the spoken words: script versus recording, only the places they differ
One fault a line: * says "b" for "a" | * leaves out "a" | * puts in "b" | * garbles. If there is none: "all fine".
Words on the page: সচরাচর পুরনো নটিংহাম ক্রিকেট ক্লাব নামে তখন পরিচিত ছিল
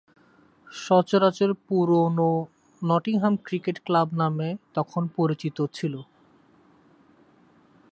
all fine